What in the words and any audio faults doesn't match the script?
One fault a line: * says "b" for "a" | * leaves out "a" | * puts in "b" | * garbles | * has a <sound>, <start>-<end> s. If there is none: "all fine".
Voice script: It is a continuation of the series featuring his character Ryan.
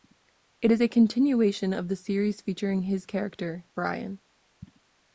all fine